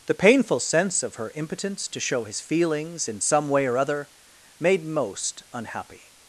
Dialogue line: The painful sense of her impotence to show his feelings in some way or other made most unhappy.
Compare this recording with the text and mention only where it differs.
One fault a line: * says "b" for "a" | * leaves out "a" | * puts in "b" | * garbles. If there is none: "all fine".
all fine